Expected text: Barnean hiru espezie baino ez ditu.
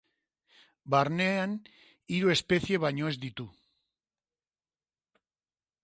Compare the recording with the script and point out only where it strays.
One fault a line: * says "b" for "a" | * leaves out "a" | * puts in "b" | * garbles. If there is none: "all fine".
all fine